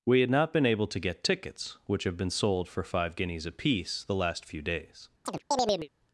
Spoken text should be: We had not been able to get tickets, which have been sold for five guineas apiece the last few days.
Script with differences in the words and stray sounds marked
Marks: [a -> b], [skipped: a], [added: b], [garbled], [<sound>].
We had not been able to get tickets, which have been sold for five guineas apiece the last few days. [chirp]